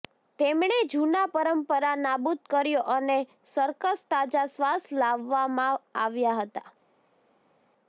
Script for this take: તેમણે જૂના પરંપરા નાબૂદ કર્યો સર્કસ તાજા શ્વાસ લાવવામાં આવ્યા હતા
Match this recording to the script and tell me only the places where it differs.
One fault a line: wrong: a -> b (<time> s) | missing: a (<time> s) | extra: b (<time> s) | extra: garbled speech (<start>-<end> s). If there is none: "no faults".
extra: અને (3.0 s)